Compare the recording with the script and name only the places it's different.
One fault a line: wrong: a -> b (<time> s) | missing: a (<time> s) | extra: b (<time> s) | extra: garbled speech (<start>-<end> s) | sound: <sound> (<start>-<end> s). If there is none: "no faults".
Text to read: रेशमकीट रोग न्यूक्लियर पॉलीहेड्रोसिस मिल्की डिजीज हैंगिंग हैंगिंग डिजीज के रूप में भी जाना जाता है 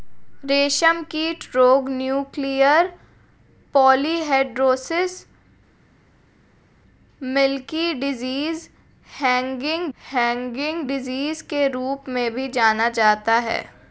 no faults